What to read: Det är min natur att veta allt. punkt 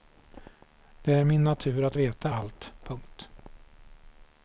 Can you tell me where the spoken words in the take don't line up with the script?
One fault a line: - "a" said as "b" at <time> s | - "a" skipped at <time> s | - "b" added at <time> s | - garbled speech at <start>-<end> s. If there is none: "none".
none